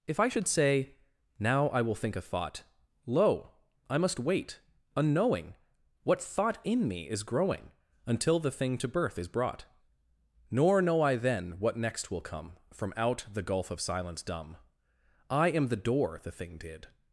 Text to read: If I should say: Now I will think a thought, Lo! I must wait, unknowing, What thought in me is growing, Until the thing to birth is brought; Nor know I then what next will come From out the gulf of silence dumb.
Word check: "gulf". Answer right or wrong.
right